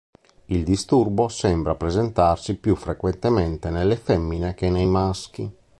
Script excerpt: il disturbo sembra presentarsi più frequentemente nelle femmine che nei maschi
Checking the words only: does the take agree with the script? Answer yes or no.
yes